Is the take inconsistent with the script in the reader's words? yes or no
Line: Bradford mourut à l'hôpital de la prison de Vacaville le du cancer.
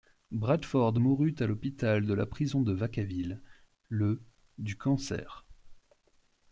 no